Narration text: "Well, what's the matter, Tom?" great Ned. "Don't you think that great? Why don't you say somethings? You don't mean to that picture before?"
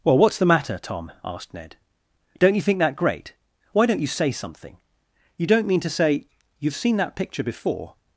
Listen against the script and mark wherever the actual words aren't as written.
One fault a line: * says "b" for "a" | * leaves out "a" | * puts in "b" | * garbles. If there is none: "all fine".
* says "asked" for "great"
* says "something" for "somethings"
* puts in "say you've seen"